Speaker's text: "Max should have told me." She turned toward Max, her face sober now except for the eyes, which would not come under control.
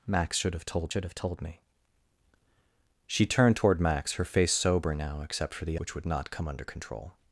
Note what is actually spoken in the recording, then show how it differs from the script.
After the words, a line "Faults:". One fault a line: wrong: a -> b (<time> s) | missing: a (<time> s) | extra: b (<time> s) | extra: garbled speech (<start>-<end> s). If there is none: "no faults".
"Max should have told should have told me." She turned toward Max, her face sober now except for the which would not come under control.
Faults:
extra: should have told (0.9 s)
missing: eyes (5.8 s)